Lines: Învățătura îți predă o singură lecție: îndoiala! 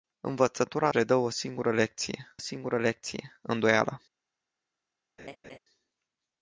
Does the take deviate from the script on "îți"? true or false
true